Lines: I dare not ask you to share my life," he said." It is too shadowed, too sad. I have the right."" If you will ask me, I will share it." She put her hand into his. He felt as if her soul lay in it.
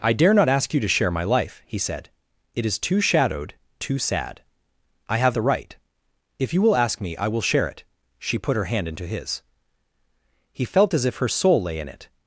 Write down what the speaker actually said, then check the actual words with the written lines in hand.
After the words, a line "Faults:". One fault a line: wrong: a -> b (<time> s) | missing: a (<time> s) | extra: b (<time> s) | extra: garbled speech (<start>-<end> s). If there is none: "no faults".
I dare not ask you to share my life," he said." It is too shadowed, too sad. I have the right."" If you will ask me, I will share it." She put her hand into his. He felt as if her soul lay in it.
Faults:
no faults